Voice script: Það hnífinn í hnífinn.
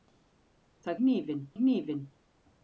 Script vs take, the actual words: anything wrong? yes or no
no